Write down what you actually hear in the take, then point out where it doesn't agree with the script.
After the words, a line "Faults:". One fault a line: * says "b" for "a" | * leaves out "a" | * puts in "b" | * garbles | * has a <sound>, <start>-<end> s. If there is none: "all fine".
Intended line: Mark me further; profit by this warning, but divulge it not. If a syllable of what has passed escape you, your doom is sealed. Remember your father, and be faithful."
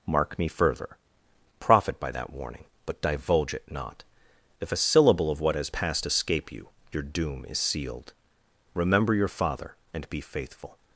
Mark me further; profit by that warning, but divulge it not. If a syllable of what has passed escape you, your doom is sealed. Remember your father, and be faithful."
Faults:
* says "that" for "this"